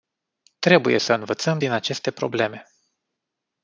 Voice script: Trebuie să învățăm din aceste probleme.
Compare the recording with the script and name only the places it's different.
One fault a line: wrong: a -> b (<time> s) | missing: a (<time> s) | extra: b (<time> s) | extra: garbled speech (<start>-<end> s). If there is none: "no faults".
no faults